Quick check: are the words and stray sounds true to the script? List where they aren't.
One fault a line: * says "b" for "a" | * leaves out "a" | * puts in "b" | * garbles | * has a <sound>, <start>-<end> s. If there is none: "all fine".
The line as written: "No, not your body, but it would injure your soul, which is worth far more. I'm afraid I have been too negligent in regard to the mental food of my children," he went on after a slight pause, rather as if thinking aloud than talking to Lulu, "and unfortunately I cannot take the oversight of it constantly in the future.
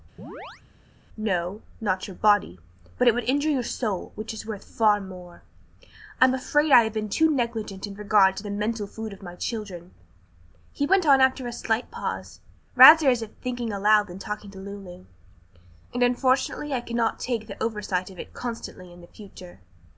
* has a chirp, 0.2-0.6 s